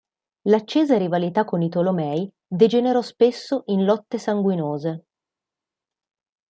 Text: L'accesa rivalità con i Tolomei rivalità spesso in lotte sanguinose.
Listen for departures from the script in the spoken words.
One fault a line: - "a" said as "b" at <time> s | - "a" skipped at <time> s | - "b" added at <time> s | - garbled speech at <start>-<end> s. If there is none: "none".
- "rivalità" said as "degenerò" at 2.5 s